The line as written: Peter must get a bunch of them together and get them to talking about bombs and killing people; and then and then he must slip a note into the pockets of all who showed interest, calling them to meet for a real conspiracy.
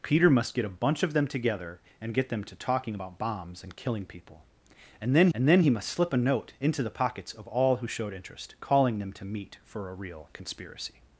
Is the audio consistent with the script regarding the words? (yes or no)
yes